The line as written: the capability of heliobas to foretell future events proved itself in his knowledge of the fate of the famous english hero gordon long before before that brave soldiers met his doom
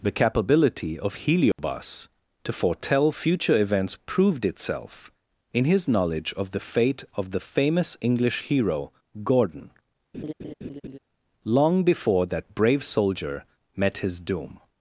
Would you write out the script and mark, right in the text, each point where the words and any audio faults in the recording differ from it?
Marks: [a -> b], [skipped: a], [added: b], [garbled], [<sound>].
the capability of heliobas [dropout] to foretell future events proved itself in his knowledge of the fate of the famous english hero gordon [laugh] long before [skipped: before] that brave [soldiers -> soldier] met his doom